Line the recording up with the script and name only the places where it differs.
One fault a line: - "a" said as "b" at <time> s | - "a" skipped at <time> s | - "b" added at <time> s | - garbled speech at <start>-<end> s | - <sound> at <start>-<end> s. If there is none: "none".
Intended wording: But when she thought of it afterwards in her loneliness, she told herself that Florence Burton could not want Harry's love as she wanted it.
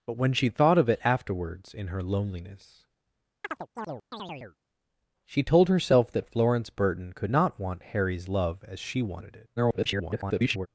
- chirp at 3.4-4.6 s
- garbled speech at 9.6-10.7 s